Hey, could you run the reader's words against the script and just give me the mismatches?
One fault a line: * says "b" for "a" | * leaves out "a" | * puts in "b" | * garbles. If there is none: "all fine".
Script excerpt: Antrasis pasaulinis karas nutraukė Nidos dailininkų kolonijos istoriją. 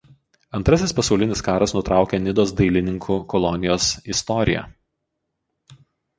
all fine